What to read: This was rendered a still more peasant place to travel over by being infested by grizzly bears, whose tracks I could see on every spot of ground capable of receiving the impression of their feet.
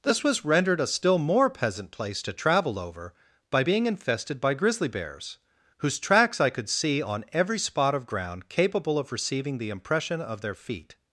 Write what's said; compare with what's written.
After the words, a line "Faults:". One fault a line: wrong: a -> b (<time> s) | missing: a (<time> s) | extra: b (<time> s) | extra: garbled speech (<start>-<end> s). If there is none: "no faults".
This was rendered a still more peasant place to travel over by being infested by grizzly bears, whose tracks I could see on every spot of ground capable of receiving the impression of their feet.
Faults:
no faults